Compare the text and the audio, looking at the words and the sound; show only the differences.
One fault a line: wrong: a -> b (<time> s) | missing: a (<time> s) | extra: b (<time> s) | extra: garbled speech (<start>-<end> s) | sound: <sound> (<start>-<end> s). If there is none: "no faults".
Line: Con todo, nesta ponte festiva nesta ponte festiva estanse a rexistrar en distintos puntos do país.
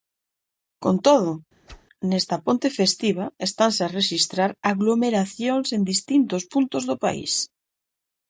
sound: whoosh (1.7-1.9 s)
missing: nesta ponte festiva (3.3 s)
extra: aglomeracións (4.7 s)